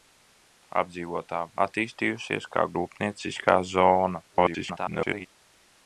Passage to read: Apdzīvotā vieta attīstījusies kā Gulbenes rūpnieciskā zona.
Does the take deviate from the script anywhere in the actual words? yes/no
yes